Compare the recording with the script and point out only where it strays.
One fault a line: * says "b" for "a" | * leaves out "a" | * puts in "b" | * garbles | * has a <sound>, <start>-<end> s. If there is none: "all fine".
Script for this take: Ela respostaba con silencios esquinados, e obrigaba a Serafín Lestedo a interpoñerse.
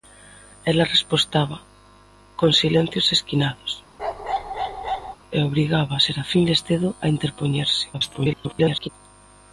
* has a bark, 4.0-5.2 s
* garbles